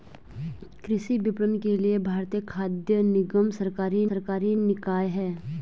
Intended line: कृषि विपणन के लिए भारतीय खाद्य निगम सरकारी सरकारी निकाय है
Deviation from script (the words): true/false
false